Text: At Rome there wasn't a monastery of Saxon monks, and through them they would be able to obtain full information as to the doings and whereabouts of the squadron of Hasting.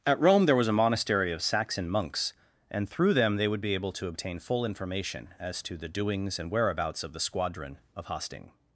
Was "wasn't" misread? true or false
true